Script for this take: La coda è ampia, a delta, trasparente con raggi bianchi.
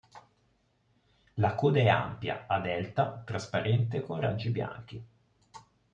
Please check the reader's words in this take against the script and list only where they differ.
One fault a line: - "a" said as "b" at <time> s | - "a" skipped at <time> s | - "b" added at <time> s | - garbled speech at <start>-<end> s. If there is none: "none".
none